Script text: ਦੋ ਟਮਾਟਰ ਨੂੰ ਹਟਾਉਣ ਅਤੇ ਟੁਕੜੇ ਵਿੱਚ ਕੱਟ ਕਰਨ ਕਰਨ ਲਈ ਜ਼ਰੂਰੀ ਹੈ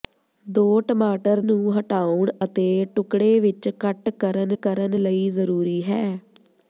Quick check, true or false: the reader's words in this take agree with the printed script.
true